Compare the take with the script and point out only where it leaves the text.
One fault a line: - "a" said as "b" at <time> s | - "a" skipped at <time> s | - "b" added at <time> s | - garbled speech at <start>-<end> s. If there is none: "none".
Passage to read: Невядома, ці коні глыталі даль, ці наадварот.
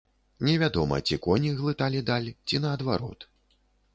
none